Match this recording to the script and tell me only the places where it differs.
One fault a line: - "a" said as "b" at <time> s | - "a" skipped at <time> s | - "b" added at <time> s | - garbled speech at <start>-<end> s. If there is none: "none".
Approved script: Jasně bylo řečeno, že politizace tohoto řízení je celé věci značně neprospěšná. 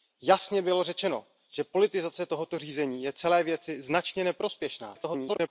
- garbled speech at 4.9-5.5 s